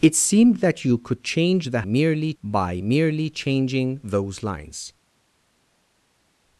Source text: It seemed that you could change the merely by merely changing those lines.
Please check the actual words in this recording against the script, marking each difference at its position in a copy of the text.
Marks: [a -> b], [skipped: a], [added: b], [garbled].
It seemed that you could change the merely by merely changing those lines.